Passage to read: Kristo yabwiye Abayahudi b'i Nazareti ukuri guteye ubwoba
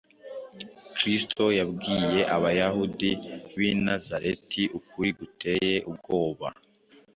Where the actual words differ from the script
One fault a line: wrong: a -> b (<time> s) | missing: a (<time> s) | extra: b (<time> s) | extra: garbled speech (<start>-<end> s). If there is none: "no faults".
no faults